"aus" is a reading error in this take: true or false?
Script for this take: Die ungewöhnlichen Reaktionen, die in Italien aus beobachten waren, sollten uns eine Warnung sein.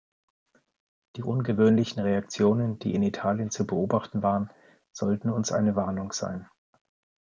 true